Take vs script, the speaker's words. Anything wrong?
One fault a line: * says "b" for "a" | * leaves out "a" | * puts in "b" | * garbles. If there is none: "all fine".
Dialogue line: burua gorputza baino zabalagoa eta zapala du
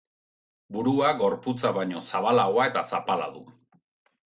all fine